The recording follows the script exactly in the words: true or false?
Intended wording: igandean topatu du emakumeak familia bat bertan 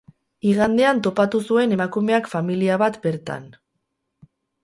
false